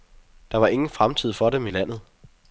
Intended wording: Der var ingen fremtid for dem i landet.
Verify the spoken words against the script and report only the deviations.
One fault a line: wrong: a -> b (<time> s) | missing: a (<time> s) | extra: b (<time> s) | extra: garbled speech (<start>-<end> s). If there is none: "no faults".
no faults